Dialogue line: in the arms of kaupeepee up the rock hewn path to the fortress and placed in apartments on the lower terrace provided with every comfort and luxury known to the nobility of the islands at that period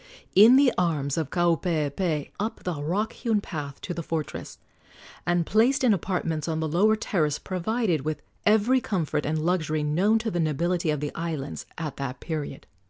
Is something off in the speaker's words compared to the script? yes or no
no